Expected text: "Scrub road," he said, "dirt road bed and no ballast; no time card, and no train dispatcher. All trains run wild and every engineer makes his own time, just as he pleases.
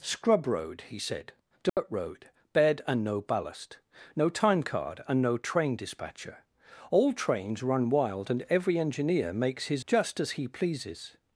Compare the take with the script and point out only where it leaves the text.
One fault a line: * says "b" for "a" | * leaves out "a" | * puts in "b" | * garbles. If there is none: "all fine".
* leaves out "own time"